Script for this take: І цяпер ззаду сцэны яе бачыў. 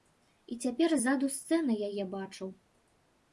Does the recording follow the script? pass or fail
pass